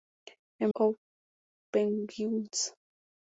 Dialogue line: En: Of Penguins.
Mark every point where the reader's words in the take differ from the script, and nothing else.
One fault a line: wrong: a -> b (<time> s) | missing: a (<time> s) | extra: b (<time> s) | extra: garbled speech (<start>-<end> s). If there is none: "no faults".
no faults